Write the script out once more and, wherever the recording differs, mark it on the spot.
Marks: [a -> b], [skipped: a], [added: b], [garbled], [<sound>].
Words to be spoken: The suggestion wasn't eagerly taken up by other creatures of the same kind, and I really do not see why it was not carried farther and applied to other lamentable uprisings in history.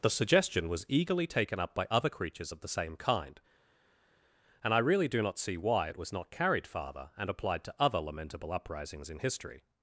The suggestion [wasn't -> was] eagerly taken up by other creatures of the same kind, and I really do not see why it was not carried farther and applied to other lamentable uprisings in history.